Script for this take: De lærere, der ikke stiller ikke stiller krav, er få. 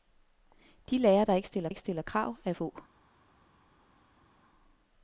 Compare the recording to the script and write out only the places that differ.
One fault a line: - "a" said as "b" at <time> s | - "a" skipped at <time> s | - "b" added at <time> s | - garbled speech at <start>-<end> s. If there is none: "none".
none